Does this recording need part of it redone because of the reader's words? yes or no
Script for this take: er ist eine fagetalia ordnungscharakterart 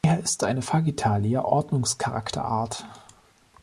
no